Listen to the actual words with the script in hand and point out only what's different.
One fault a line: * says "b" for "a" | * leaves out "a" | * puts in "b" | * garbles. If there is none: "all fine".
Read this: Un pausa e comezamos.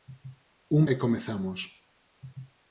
* leaves out "pausa"